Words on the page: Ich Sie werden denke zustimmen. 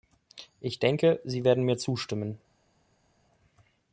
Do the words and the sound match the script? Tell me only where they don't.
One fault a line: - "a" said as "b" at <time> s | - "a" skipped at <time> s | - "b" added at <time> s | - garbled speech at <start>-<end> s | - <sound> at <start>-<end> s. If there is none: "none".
- "denke" added at 0.8 s
- "denke" said as "mir" at 1.6 s